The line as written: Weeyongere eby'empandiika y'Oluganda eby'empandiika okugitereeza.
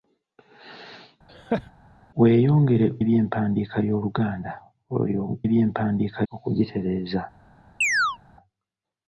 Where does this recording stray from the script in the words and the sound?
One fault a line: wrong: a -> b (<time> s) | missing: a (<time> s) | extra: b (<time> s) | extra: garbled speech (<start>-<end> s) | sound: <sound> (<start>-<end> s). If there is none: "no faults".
sound: laugh (1.3-1.7 s)
sound: chirp (7.8-8.2 s)